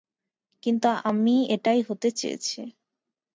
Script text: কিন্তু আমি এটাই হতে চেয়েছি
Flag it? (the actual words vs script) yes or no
no